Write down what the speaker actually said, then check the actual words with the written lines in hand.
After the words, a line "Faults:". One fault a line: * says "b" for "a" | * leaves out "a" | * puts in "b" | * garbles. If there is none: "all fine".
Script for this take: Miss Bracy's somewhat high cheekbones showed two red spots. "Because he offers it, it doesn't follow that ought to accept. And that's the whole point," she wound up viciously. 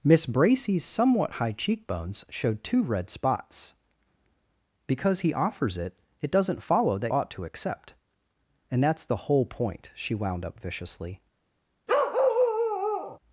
Miss Bracy's somewhat high cheekbones showed two red spots. "Because he offers it, it doesn't follow that ought to accept. And that's the whole point," she wound up viciously.
Faults:
all fine